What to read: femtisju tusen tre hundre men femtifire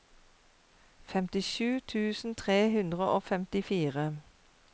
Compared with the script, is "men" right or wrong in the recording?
wrong